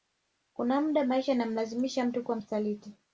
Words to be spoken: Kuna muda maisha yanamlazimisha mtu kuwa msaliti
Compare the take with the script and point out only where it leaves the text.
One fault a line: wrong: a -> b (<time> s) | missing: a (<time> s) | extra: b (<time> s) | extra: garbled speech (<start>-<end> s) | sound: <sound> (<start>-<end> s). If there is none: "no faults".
no faults